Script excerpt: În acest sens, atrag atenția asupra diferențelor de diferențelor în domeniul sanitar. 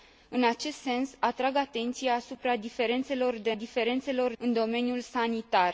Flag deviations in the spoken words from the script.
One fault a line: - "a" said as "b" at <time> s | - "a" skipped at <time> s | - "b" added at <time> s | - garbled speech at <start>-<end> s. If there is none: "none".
none